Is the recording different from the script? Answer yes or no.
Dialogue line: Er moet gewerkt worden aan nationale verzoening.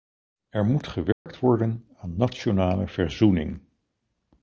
no